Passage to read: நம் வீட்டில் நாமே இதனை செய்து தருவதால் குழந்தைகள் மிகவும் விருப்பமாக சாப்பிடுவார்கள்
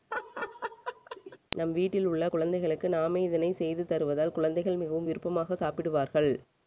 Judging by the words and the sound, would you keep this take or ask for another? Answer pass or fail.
fail